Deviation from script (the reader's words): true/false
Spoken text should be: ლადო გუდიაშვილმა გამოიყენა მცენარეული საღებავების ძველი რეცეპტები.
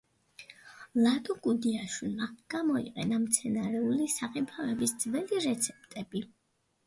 false